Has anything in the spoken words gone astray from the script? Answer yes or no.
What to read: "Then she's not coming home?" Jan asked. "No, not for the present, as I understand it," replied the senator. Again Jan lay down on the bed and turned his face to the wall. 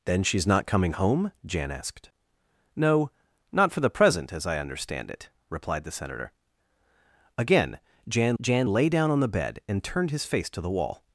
yes